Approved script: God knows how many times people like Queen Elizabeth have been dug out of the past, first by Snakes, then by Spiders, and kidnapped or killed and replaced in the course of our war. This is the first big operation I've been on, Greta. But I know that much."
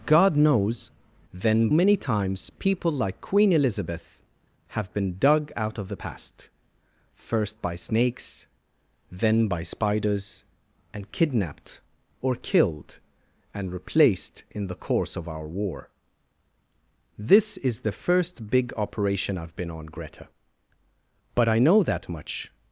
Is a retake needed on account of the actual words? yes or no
yes